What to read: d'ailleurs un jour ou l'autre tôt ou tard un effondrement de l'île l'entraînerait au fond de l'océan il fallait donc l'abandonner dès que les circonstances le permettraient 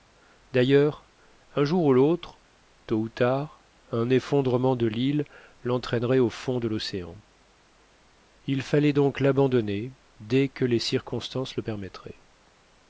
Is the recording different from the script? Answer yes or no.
no